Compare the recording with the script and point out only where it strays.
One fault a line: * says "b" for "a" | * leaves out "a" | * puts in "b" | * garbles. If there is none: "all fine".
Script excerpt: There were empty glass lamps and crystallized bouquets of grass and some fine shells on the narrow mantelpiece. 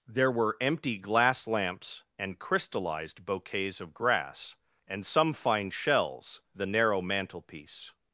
* leaves out "on"